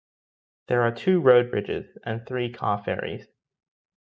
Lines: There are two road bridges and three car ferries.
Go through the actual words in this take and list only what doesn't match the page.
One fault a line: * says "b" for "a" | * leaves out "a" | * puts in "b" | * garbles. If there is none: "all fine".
all fine